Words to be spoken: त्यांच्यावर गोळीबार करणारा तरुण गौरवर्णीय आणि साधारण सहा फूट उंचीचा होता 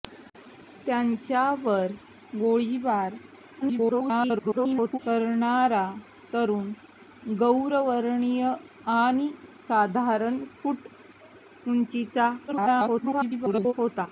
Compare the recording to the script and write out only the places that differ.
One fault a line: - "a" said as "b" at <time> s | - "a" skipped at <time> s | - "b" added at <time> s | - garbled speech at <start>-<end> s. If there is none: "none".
- garbled speech at 3.6-5.0 s
- "सहा" skipped at 10.4 s
- garbled speech at 12.5-13.7 s